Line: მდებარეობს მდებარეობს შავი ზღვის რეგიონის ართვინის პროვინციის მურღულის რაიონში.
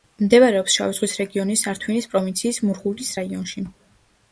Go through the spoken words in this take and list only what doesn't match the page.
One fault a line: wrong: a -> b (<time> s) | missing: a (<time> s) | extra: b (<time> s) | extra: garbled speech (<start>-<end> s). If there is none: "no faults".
missing: მდებარეობს (0.8 s)